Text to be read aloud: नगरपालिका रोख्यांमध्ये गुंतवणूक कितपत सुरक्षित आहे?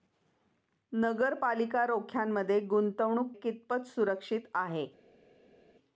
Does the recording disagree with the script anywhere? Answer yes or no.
no